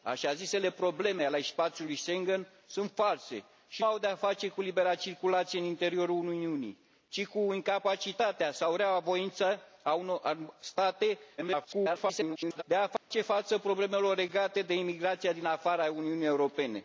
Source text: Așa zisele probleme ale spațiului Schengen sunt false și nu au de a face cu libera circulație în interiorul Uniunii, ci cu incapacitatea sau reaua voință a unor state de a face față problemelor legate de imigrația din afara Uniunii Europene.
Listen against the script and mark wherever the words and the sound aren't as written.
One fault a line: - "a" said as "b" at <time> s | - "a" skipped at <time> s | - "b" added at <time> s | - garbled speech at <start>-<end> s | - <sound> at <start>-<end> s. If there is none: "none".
- "nu" skipped at 3.8 s
- garbled speech at 11.4-12.6 s
- dropout at 13.0-13.1 s